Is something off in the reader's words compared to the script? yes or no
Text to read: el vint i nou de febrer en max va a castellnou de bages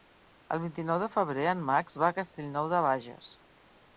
no